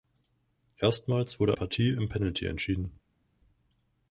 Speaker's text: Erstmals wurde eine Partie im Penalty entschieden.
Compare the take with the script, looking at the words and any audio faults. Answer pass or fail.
fail